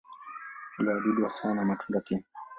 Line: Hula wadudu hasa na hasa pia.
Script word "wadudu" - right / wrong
right